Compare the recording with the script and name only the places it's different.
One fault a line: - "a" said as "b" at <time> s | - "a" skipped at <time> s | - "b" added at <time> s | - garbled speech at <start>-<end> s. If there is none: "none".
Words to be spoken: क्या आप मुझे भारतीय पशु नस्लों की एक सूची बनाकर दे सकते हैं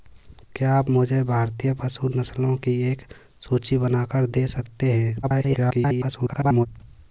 - garbled speech at 5.2-6.7 s